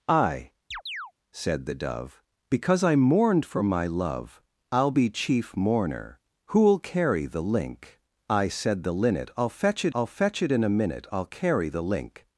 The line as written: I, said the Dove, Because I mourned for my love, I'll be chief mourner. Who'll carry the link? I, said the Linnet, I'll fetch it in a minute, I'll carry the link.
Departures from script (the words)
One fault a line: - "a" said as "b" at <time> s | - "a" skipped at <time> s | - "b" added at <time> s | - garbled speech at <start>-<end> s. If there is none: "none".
- "I'll fetch it" added at 9.9 s